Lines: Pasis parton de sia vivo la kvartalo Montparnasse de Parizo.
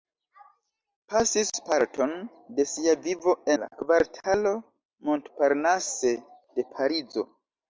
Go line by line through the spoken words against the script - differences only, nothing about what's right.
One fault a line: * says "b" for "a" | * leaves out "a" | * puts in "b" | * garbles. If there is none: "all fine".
all fine